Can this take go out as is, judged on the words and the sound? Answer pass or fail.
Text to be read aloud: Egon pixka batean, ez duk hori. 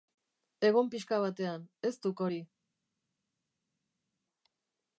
pass